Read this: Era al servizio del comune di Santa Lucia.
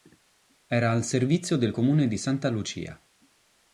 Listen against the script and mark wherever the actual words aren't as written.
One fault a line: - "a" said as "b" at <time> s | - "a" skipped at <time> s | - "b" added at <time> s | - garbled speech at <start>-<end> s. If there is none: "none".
none